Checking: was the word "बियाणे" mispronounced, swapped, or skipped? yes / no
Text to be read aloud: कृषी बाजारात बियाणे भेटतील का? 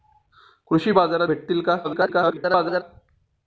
yes